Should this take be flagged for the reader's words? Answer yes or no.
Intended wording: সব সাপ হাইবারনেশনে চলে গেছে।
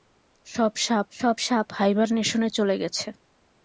yes